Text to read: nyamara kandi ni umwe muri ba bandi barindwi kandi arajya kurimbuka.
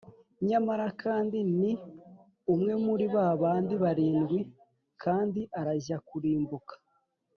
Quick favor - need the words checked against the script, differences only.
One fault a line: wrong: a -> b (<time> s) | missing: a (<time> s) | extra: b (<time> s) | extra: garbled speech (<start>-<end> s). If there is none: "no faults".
no faults